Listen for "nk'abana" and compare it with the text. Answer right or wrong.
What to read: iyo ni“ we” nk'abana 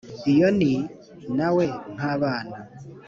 right